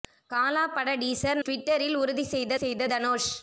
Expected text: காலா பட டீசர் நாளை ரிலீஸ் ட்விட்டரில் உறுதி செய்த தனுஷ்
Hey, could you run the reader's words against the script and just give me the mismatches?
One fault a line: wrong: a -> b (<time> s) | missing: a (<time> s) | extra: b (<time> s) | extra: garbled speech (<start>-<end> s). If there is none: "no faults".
missing: நாளை ரிலீஸ் (1.4 s)
extra: செய்த (2.5 s)